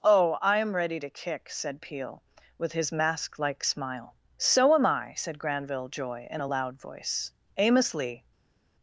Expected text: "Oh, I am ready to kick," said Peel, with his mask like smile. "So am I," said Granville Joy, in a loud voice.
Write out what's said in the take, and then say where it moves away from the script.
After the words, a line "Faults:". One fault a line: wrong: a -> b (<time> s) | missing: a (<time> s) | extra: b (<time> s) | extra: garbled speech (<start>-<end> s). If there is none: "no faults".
"Oh, I am ready to kick," said Peel, with his mask like smile. "So am I," said Granville Joy, in a loud voice. Amos Lee
Faults:
extra: Amos Lee (7.6 s)